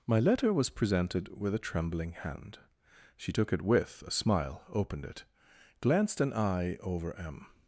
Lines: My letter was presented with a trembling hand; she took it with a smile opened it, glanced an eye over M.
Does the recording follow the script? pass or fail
pass